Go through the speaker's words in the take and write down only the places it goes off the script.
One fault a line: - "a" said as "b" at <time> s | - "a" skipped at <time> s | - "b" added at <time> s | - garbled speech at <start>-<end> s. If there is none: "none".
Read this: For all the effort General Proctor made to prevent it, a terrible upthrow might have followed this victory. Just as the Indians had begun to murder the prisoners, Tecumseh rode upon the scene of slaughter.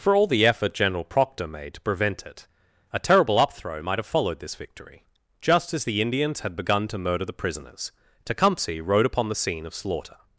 none